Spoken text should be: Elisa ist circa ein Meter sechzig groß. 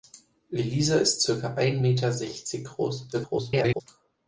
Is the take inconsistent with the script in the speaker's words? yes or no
yes